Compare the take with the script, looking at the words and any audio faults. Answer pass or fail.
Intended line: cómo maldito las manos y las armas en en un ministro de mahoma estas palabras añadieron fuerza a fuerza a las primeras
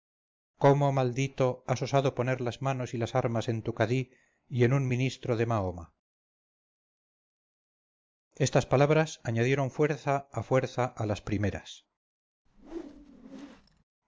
fail